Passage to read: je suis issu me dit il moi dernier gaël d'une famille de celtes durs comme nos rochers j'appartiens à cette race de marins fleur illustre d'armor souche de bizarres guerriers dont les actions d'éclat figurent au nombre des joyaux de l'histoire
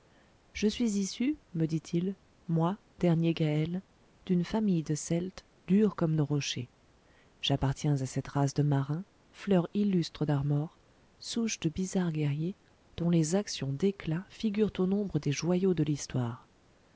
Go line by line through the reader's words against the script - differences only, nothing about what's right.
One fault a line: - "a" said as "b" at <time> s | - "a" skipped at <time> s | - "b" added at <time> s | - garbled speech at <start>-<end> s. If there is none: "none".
none